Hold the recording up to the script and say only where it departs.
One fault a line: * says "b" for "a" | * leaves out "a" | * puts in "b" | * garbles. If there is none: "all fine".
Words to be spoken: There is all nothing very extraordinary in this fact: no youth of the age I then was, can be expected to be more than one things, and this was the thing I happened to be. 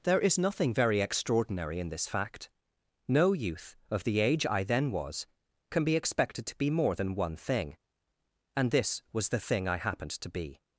* leaves out "all"
* says "thing" for "things"